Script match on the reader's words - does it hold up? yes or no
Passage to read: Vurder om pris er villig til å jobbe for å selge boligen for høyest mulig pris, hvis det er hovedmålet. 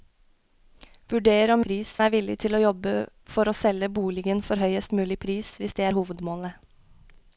yes